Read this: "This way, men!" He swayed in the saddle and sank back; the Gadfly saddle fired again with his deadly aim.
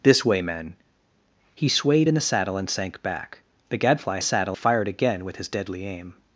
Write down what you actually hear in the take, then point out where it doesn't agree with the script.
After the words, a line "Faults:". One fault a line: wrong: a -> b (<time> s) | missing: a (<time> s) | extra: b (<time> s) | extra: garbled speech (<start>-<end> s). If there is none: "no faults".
"This way, men!" He swayed in the saddle and sank back; the Gadfly saddle fired again with his deadly aim.
Faults:
no faults